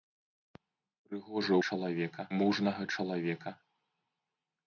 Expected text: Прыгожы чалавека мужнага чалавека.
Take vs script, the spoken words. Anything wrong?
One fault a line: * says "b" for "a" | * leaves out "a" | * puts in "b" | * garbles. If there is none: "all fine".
all fine